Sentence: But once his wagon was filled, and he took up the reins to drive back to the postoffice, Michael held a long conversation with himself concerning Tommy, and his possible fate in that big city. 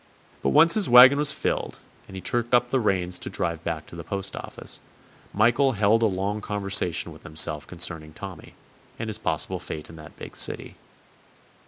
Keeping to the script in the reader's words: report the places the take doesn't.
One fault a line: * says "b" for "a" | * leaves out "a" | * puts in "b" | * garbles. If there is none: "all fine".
all fine